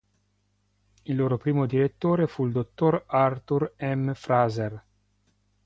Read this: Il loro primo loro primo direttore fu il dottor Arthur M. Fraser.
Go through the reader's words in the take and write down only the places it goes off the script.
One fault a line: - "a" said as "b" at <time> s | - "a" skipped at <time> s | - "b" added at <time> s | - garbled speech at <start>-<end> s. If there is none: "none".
- "loro primo" skipped at 1.7 s